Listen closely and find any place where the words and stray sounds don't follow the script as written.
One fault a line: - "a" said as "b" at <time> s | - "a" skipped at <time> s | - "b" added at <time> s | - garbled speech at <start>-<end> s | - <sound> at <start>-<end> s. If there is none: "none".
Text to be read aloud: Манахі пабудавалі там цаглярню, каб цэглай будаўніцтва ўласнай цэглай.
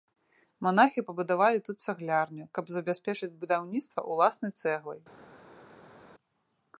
- "там" said as "тут" at 1.7 s
- "цэглай" said as "забяспечыць" at 2.8 s